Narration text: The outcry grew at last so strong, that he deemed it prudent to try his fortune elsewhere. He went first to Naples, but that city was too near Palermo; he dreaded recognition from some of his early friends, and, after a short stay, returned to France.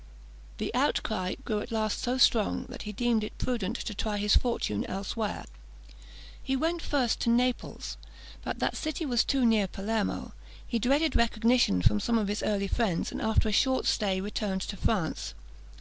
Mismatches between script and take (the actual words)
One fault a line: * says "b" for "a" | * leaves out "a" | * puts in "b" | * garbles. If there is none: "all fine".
all fine